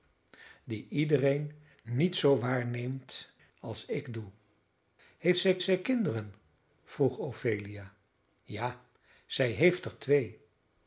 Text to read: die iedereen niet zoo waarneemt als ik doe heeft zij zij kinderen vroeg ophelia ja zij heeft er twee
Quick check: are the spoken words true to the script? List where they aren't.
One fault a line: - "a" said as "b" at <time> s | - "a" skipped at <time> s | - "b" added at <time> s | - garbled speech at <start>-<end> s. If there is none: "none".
none